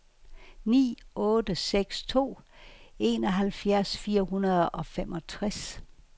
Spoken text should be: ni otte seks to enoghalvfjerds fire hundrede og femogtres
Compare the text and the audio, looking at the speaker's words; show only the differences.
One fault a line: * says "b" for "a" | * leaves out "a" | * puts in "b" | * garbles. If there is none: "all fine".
all fine